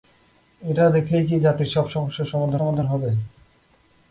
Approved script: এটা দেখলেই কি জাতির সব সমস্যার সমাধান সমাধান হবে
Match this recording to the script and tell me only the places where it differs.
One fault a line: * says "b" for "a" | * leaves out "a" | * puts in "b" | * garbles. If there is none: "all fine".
all fine